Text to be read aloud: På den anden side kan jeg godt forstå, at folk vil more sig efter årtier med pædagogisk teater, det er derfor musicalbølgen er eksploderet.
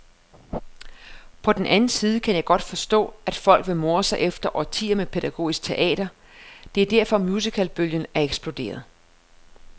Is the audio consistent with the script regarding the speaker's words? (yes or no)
yes